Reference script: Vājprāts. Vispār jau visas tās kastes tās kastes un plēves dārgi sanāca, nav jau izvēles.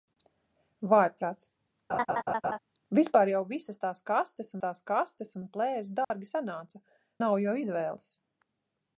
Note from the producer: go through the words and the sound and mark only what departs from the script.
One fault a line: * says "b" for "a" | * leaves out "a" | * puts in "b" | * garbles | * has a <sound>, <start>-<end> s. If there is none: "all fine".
* has a laugh, 1.9-2.6 s
* has a dropout, 6.0-6.1 s